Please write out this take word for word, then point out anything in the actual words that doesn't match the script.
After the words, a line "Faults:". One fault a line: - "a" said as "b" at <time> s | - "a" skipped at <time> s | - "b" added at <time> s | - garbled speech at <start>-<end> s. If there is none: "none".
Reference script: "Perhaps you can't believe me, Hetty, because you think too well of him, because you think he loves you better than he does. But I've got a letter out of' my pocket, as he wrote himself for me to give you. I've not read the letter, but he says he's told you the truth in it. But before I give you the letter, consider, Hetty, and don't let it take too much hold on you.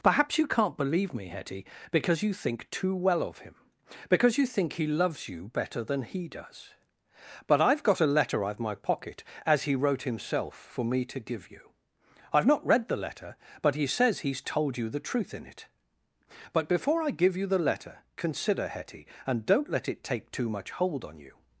"Perhaps you can't believe me, Hetty, because you think too well of him, because you think he loves you better than he does. But I've got a letter out of' my pocket, as he wrote himself for me to give you. I've not read the letter, but he says he's told you the truth in it. But before I give you the letter, consider, Hetty, and don't let it take too much hold on you.
Faults:
none